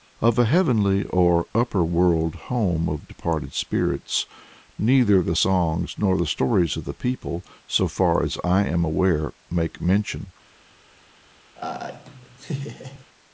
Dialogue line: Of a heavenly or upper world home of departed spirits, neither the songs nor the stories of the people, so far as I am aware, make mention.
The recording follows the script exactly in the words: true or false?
true